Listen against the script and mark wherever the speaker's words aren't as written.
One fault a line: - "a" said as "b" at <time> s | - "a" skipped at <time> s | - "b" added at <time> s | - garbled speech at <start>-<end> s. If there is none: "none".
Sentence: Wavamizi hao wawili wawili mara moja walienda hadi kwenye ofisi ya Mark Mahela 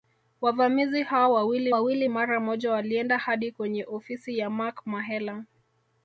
none